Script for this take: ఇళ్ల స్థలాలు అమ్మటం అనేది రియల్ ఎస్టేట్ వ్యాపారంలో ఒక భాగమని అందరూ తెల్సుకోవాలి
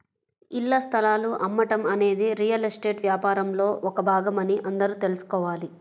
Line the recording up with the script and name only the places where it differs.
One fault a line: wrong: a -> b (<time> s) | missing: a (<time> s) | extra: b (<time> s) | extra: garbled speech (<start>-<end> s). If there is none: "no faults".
no faults